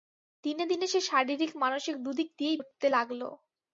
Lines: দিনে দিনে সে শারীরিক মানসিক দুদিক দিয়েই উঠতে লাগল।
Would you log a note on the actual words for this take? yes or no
no